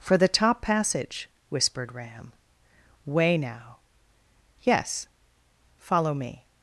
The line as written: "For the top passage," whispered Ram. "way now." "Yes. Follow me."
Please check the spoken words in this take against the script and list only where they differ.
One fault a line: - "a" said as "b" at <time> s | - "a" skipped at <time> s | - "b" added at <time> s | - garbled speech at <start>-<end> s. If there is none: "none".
none